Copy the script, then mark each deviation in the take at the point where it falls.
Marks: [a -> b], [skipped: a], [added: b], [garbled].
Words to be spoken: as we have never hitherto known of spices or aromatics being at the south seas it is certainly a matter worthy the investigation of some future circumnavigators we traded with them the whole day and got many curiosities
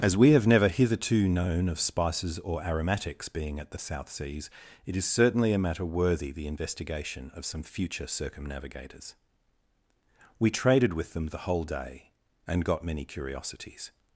as we have never hitherto known of spices or aromatics being at the south seas it is certainly a matter worthy the investigation of some future circumnavigators we traded with them the whole day and got many curiosities